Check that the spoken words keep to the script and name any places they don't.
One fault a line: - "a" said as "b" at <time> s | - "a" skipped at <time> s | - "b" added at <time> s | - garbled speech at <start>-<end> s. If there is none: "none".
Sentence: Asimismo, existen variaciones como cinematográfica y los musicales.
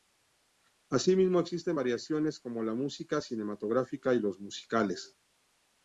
- "la música" added at 2.6 s